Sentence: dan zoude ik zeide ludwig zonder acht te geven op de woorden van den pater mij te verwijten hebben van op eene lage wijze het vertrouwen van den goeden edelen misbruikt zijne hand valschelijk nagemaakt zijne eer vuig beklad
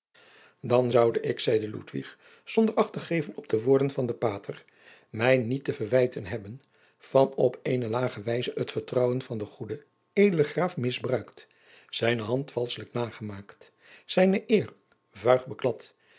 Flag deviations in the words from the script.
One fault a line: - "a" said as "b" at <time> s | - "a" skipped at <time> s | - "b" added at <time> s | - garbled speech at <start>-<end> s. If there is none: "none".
- "niet" added at 5.4 s
- "graaf" added at 10.4 s